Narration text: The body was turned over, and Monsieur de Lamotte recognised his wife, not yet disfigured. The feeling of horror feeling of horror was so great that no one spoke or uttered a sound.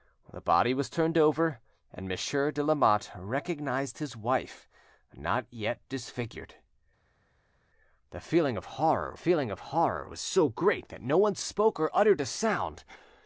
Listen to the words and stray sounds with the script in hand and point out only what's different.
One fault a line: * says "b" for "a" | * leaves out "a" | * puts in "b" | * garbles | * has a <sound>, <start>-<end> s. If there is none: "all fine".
all fine